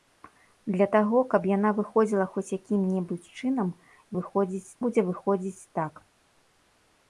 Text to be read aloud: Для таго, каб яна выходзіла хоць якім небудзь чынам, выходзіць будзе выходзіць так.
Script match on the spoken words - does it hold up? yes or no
yes